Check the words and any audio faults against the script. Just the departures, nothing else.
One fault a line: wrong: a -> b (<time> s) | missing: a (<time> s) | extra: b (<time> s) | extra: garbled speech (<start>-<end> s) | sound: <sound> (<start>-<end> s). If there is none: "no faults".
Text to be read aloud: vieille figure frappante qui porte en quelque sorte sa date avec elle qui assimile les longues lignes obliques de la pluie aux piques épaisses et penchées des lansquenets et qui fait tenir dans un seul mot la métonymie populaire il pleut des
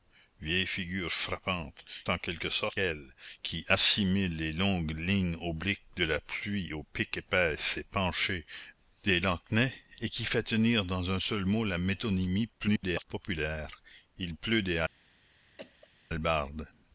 missing: qui porte (1.9 s)
missing: sa date avec (2.8 s)
extra: garbled speech (12.6-13.0 s)
sound: cough (15.6-15.9 s)